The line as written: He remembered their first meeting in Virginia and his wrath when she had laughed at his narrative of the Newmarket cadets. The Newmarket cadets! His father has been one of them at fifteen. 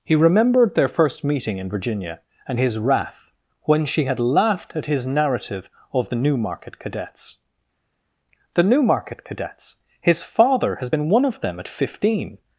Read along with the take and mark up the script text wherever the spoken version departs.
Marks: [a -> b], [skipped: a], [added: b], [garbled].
He remembered their first meeting in Virginia and his wrath when she had laughed at his narrative of the Newmarket cadets. The Newmarket cadets! His father has been one of them at fifteen.